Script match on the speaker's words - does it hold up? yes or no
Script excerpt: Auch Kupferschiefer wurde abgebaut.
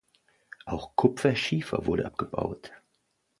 yes